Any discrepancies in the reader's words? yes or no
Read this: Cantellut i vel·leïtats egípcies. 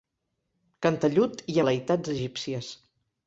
no